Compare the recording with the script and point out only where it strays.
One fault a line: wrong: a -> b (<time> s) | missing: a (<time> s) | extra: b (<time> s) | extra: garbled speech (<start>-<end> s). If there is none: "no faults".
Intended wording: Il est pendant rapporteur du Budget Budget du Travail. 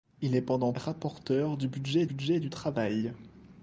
no faults